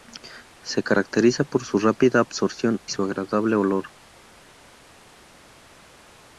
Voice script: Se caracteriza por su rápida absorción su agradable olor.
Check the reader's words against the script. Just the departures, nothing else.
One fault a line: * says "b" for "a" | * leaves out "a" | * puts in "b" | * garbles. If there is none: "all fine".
all fine